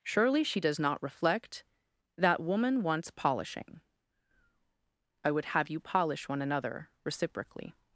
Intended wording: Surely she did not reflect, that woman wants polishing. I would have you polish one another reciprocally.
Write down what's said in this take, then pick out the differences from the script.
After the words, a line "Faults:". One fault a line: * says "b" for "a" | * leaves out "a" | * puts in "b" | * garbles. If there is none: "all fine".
Surely she does not reflect, that woman wants polishing. I would have you polish one another reciprocally.
Faults:
* says "does" for "did"